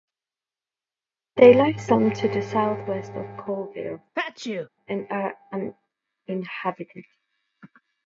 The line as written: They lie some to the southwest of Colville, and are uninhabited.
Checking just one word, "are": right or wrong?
right